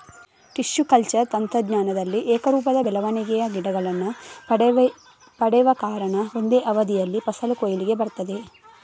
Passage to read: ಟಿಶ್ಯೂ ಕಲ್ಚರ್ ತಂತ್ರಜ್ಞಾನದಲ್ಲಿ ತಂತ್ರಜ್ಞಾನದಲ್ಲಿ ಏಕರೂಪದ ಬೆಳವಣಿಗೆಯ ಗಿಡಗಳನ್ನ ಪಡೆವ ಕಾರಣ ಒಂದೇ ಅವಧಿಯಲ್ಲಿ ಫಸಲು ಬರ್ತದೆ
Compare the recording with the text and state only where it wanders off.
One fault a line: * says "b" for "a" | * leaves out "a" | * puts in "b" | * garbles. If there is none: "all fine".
* leaves out "ತಂತ್ರಜ್ಞಾನದಲ್ಲಿ"
* puts in "ಕೊಯ್ಲಿಗೆ"